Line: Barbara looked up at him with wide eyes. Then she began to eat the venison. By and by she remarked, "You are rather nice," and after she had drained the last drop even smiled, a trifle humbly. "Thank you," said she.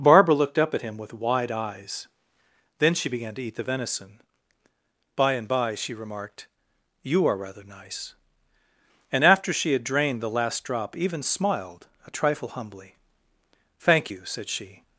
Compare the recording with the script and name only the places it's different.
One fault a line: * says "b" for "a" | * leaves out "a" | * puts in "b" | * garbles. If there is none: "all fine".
all fine